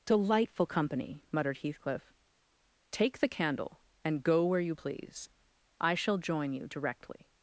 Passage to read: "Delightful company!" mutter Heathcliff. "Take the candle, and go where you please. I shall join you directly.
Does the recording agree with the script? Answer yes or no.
no